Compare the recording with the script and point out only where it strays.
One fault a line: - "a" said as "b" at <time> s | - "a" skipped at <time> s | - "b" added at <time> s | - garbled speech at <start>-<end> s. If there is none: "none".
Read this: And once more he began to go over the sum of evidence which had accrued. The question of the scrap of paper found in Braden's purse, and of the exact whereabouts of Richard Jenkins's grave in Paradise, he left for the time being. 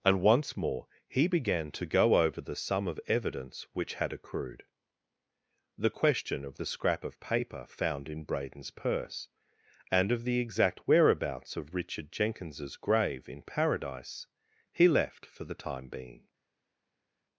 none